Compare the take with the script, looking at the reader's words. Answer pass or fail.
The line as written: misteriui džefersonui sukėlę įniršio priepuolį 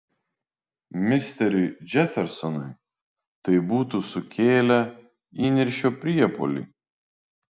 fail